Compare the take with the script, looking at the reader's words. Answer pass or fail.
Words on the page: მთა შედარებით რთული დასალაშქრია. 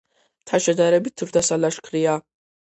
fail